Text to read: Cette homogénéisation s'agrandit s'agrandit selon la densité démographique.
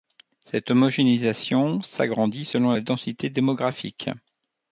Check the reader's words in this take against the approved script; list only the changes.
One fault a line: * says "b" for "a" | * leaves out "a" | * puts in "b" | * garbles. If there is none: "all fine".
* leaves out "s'agrandit"